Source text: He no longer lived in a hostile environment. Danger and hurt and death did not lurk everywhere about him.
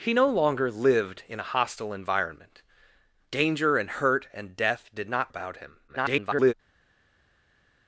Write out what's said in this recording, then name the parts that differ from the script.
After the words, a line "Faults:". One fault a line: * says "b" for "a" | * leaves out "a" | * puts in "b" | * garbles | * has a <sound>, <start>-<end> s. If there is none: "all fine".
He no longer lived in a hostile environment. Danger and hurt and death did not about him. [garbled]
Faults:
* leaves out "lurk everywhere"
* garbles